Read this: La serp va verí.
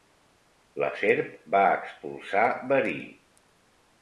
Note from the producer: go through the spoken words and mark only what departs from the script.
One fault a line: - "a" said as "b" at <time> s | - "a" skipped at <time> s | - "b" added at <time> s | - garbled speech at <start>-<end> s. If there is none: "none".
- "expulsar" added at 1.8 s